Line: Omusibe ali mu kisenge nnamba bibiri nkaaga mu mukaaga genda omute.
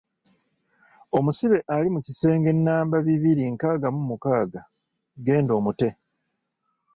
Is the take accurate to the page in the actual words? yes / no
yes